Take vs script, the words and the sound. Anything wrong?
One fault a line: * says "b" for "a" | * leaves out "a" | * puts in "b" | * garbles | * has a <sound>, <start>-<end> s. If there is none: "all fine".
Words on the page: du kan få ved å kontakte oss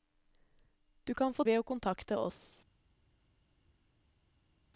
all fine